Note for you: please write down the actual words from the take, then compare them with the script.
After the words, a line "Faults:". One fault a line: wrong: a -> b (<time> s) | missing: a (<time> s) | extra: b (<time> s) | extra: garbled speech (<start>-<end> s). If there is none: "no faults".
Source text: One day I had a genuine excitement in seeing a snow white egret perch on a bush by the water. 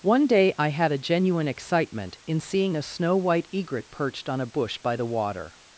One day I had a genuine excitement in seeing a snow white egret perched on a bush by the water.
Faults:
wrong: perch -> perched (3.9 s)